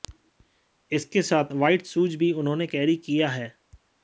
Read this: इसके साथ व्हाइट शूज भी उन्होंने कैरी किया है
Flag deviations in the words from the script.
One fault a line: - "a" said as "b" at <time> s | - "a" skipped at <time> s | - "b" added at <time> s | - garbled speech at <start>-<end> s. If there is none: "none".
none